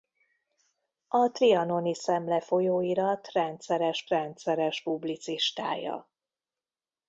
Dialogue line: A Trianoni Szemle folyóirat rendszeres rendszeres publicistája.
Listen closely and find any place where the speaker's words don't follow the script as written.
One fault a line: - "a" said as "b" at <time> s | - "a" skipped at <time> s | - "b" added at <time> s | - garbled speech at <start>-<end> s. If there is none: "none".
none